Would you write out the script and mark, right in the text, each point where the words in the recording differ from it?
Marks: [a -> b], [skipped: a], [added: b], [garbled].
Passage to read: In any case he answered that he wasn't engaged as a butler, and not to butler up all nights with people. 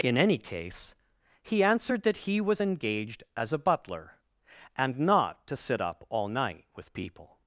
In any case he answered that he [wasn't -> was] engaged as a butler, and not to [butler -> sit] up all [nights -> night] with people.